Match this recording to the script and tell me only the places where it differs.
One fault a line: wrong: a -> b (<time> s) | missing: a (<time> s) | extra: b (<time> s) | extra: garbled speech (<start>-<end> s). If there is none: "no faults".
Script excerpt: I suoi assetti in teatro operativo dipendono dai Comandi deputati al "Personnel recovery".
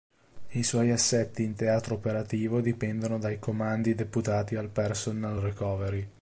no faults